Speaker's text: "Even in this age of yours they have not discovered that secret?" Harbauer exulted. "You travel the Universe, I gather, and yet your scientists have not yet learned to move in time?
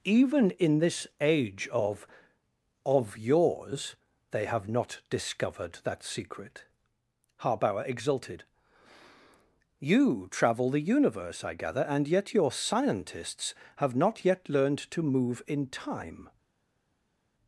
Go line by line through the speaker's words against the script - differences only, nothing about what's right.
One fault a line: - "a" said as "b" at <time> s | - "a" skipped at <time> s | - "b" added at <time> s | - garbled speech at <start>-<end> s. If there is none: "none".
- "of" added at 2.8 s